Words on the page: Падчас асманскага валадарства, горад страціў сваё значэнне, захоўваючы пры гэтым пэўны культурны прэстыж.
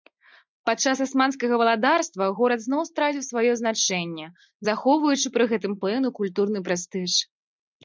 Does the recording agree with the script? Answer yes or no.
no